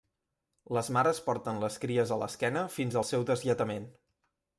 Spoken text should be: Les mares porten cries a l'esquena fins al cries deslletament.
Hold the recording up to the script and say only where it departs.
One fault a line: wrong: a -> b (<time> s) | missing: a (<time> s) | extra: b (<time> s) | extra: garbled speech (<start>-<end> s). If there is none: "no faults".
extra: les (1.6 s)
wrong: cries -> seu (3.1 s)